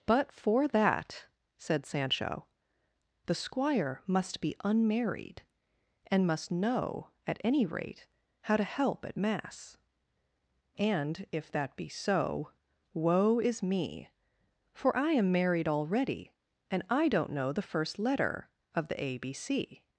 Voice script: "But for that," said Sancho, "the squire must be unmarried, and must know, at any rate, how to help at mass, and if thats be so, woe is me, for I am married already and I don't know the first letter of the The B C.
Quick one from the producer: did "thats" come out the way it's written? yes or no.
no